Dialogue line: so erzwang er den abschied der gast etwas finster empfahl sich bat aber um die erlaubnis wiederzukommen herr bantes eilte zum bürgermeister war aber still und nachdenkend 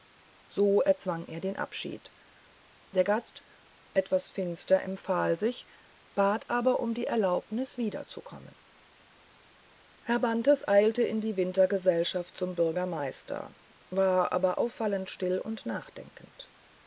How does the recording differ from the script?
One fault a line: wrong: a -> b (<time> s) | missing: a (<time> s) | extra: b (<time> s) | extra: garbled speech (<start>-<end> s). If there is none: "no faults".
extra: in die wintergesellschaft (11.0 s)
extra: auffallend (14.6 s)